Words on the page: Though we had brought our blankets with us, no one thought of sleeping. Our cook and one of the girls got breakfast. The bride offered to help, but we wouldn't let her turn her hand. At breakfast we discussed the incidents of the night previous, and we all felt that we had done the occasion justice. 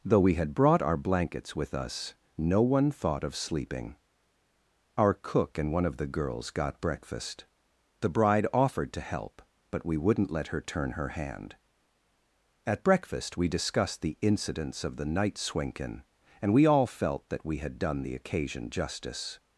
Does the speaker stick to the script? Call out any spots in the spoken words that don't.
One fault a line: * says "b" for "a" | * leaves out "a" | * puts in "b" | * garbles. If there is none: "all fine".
* says "swinken" for "previous"